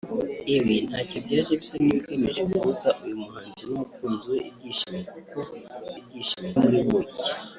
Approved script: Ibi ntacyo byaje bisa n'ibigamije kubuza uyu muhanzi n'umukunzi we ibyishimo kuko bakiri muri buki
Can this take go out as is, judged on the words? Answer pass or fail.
fail